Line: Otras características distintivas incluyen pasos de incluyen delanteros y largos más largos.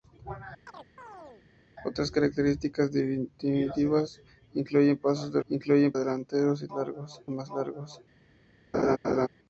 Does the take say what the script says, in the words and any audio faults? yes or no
no